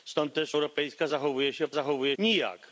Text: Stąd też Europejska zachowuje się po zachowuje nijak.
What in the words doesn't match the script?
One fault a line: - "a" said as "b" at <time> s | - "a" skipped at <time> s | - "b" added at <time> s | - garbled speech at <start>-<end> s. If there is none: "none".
none